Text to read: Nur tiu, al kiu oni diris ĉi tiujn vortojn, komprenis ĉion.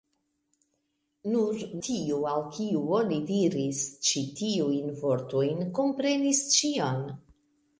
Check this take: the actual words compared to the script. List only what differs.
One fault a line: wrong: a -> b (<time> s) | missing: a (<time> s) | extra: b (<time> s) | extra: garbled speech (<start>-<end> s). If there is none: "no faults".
no faults